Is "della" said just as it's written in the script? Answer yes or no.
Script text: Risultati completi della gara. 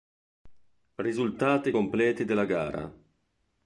yes